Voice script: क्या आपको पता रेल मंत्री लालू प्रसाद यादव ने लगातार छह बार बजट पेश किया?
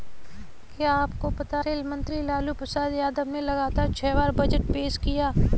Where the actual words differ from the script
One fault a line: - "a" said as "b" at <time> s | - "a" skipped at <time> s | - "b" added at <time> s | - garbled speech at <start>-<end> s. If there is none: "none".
none